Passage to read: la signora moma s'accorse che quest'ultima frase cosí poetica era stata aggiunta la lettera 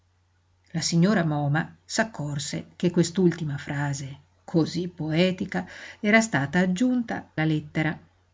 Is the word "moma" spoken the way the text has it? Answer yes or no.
yes